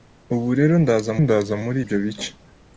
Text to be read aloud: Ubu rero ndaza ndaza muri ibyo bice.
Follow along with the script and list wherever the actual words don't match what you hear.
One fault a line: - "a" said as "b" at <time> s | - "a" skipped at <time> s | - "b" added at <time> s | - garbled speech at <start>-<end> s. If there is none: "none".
none